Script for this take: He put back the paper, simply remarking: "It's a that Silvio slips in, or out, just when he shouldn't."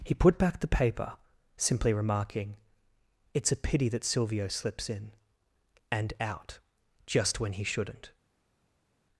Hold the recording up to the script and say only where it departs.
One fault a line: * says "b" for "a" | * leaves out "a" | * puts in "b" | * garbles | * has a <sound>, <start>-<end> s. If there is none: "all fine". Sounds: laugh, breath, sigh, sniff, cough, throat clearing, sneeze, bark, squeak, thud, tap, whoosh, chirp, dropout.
* puts in "pity"
* says "and" for "or"